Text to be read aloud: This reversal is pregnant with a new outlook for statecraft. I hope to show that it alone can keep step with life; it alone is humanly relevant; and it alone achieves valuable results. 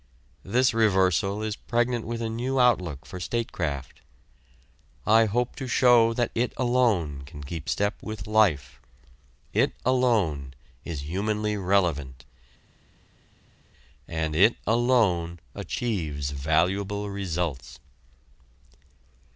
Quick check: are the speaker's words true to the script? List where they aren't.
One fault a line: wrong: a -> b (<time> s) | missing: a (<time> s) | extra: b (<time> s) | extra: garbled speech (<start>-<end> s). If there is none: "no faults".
no faults